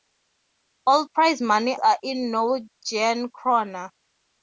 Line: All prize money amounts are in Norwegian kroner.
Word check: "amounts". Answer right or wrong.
wrong